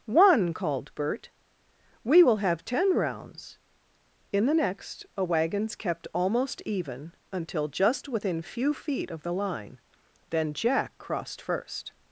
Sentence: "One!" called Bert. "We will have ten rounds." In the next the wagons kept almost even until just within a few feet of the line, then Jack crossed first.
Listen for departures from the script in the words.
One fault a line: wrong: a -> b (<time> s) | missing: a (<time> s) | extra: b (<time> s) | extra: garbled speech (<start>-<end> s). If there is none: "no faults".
wrong: the -> a (5.2 s)
missing: a (8.4 s)